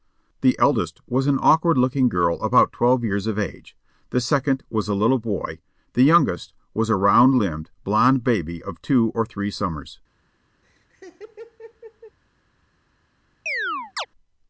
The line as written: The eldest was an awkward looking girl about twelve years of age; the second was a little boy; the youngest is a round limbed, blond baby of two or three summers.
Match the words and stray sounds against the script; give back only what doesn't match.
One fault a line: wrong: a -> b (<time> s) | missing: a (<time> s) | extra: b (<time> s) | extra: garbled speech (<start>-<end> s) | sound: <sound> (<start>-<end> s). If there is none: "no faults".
wrong: is -> was (6.7 s)
sound: laugh (10.6-12.2 s)
sound: chirp (13.5-14.1 s)